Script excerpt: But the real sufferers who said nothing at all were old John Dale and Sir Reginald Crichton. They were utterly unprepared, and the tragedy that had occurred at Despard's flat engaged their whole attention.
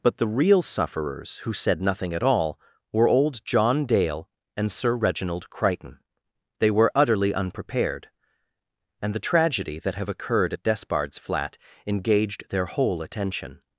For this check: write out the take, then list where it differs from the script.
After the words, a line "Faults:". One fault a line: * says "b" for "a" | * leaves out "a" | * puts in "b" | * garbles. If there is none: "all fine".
But the real sufferers who said nothing at all were old John Dale and Sir Reginald Crichton. They were utterly unprepared, and the tragedy that have occurred at Despard's flat engaged their whole attention.
Faults:
* says "have" for "had"